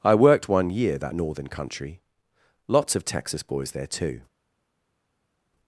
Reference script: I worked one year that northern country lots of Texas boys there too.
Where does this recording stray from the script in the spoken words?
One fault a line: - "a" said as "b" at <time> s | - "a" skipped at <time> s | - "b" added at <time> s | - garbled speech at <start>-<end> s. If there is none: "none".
none